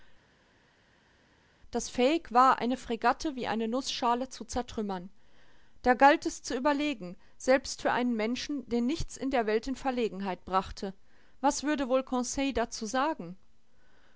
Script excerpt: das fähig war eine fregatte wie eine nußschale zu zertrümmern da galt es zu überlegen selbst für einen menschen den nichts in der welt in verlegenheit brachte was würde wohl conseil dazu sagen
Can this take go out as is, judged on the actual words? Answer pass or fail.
pass